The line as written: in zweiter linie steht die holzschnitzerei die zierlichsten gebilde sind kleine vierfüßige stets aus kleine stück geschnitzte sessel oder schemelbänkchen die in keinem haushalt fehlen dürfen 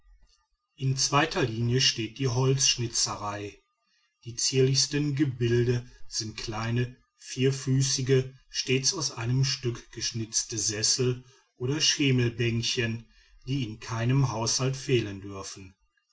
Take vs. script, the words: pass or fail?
fail